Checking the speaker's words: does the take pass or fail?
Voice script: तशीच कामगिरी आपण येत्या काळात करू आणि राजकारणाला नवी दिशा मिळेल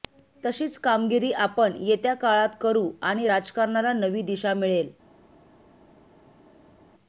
pass